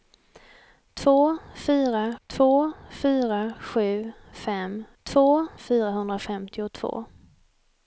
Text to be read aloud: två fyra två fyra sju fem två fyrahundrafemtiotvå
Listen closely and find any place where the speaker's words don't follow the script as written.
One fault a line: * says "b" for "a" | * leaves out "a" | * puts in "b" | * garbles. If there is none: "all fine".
all fine